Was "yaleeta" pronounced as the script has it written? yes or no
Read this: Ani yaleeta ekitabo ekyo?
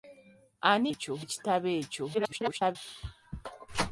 no